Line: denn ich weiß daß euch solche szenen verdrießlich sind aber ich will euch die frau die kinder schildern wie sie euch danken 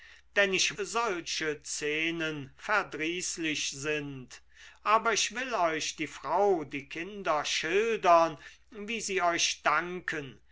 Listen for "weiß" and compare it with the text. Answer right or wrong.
wrong